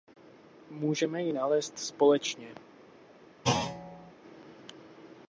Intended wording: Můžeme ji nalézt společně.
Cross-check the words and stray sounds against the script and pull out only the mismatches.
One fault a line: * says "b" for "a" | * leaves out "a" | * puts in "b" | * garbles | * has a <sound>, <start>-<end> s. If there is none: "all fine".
* has a thud, 3.4-4.1 s